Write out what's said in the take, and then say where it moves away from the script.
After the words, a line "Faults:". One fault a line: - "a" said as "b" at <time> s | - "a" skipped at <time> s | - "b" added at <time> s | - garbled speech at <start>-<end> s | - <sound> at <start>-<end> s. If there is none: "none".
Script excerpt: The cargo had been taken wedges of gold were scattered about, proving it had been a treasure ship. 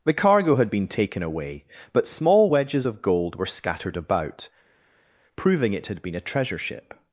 The cargo had been taken away, but small wedges of gold were scattered about, proving it had been a treasure ship.
Faults:
- "away but small" added at 1.2 s